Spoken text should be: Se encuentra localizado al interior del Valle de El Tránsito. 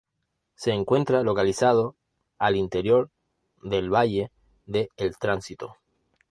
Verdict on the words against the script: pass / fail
pass